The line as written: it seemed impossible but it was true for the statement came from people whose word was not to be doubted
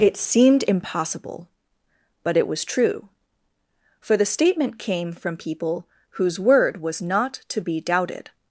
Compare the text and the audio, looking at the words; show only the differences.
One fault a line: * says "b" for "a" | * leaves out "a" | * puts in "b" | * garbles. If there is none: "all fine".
all fine